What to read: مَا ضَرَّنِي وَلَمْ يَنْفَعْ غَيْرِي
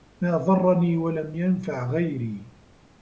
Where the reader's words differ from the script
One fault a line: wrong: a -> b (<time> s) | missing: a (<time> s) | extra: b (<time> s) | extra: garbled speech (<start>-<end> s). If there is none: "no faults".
no faults